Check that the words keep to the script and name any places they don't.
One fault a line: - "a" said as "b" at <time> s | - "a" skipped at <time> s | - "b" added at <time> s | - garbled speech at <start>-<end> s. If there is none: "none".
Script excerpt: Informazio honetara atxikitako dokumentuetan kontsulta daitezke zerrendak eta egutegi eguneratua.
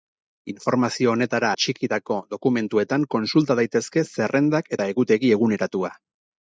none